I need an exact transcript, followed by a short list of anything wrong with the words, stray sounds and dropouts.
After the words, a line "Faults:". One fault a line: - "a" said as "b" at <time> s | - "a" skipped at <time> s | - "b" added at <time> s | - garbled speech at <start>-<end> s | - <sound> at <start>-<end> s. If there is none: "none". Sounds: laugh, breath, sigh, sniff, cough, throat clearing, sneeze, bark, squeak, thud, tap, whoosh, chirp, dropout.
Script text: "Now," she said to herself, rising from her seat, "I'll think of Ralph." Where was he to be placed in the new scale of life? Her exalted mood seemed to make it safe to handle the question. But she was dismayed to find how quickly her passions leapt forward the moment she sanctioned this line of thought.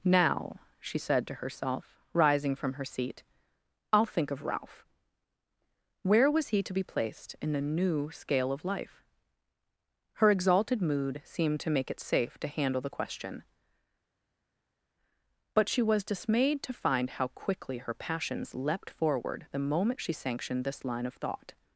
"Now," she said to herself, rising from her seat, "I'll think of Ralph." Where was he to be placed in the new scale of life? Her exalted mood seemed to make it safe to handle the question. But she was dismayed to find how quickly her passions leapt forward the moment she sanctioned this line of thought.
Faults:
none